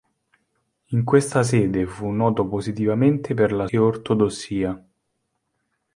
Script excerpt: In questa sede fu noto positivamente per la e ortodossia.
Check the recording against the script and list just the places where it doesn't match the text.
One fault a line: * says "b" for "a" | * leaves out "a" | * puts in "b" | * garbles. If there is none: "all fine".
all fine